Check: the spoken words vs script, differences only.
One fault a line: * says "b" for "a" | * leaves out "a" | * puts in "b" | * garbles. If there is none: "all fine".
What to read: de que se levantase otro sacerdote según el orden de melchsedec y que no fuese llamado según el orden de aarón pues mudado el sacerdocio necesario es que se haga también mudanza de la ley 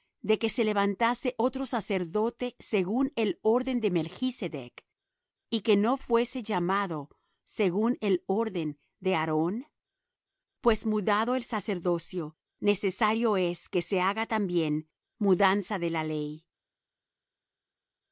all fine